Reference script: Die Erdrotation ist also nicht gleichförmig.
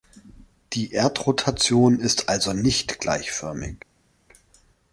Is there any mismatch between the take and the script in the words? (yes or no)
no